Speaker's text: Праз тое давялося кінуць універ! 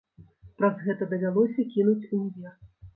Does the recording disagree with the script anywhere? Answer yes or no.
yes